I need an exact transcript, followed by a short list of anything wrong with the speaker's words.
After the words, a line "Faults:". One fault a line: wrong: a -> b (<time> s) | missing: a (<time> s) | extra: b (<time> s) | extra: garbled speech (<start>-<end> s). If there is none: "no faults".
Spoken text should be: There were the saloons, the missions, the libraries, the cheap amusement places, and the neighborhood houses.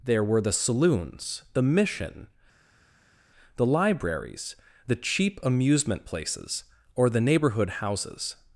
There were the saloons, the mission, the libraries, the cheap amusement places, or the neighborhood houses.
Faults:
wrong: missions -> mission (1.6 s)
wrong: and -> or (7.0 s)